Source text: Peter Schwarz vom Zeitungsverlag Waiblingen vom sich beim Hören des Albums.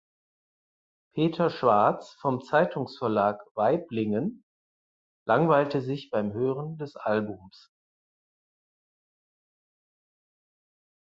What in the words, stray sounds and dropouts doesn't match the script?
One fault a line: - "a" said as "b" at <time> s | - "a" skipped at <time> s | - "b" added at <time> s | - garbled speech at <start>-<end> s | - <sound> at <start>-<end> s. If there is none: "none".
- "vom" said as "langweilte" at 5.3 s